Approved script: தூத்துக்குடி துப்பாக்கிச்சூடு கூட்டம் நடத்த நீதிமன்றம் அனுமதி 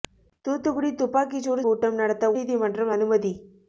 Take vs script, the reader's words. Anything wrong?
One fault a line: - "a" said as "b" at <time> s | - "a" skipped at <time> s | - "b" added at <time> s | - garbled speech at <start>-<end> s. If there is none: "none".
none